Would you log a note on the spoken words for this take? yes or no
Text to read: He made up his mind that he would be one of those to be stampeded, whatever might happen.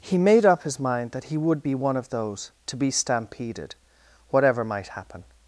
no